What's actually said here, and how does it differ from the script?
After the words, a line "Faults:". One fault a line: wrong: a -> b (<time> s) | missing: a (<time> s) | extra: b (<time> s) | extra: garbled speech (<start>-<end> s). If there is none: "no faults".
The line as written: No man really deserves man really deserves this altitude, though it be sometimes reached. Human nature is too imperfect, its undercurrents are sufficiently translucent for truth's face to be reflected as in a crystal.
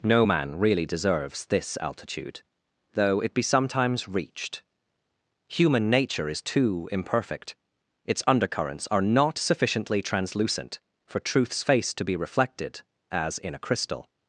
No man really deserves this altitude, though it be sometimes reached. Human nature is too imperfect, its undercurrents are not sufficiently translucent for truth's face to be reflected as in a crystal.
Faults:
missing: man really deserves (1.5 s)
extra: not (9.0 s)